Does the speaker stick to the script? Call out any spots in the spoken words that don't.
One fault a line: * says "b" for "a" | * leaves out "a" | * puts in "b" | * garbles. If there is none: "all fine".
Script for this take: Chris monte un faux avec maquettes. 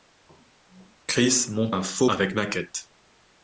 all fine